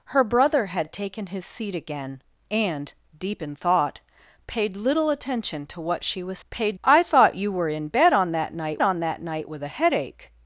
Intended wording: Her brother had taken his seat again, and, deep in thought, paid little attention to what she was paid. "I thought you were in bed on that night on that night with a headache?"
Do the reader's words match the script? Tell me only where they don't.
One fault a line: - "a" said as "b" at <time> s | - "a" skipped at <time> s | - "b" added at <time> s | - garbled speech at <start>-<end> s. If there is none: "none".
none